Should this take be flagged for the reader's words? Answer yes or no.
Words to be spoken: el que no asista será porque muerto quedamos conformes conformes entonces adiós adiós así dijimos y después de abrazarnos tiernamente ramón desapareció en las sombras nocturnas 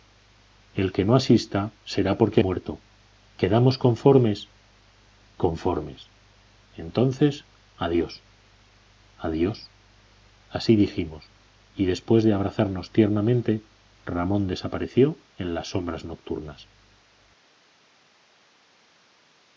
no